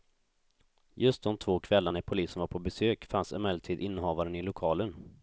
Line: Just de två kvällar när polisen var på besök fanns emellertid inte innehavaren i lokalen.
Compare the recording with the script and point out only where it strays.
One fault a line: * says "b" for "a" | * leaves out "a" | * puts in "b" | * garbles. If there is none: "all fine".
* leaves out "inte"